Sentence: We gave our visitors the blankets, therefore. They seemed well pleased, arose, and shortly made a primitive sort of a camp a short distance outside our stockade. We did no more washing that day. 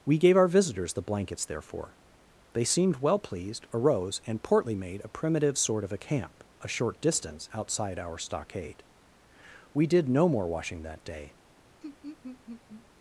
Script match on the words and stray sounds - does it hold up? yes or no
no